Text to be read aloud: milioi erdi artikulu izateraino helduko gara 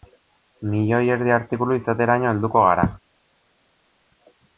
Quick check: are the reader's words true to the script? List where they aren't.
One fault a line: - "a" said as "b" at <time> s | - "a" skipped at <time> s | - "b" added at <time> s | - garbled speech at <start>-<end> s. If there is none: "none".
none